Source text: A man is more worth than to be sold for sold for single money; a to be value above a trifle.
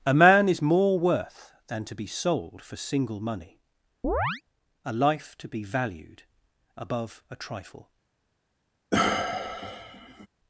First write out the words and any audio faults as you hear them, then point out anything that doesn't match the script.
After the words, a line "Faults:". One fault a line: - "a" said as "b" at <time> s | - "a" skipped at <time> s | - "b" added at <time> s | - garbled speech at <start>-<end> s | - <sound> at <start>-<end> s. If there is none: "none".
A man is more worth than to be sold for single money; a life to be valued above a trifle.
Faults:
- "sold for" skipped at 2.8 s
- chirp at 4.0-4.4 s
- "life" added at 4.9 s
- "value" said as "valued" at 5.6 s
- sigh at 8.9-10.3 s